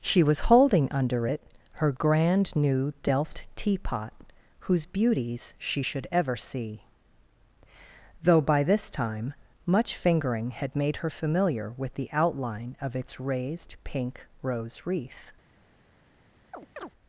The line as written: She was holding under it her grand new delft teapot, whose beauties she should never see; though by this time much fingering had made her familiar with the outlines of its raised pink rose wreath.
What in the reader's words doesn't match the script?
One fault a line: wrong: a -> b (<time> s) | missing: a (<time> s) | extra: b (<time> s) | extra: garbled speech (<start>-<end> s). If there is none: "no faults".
wrong: never -> ever (6.1 s)
wrong: outlines -> outline (12.1 s)